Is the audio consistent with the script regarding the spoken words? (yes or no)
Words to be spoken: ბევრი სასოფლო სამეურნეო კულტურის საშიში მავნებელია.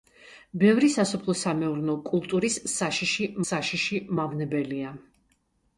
no